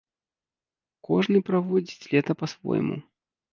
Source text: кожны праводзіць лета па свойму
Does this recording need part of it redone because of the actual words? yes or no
no